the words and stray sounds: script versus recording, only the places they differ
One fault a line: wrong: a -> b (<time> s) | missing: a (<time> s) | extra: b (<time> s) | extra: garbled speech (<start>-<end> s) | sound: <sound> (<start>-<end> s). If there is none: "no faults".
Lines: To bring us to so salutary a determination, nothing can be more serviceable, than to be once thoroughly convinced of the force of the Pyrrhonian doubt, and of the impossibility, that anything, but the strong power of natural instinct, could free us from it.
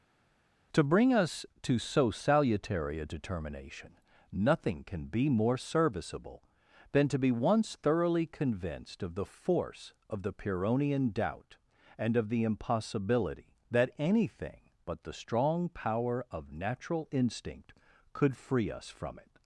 no faults